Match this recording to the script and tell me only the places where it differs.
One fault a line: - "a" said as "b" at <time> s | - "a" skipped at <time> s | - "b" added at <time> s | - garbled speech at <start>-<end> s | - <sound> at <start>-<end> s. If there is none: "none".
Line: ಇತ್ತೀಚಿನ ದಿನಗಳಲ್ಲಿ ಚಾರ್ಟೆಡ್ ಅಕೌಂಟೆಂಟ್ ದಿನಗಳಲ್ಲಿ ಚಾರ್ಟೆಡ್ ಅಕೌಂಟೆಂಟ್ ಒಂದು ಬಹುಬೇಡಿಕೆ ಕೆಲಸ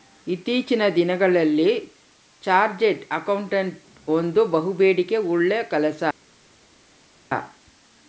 - "ದಿನಗಳಲ್ಲಿ ಚಾರ್ಟೆಡ್ ಅಕೌಂಟೆಂಟ್" skipped at 3.8 s
- "ಉಳ್ಳ" added at 5.3 s